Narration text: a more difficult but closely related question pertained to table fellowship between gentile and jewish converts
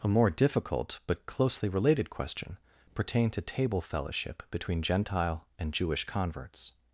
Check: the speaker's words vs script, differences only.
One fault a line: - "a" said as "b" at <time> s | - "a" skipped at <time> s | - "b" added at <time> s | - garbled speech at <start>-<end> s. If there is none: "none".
none